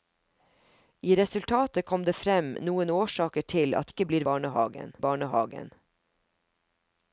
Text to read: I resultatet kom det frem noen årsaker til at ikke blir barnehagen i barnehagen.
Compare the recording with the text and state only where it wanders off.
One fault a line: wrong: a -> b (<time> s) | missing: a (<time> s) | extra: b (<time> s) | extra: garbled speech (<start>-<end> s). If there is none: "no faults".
no faults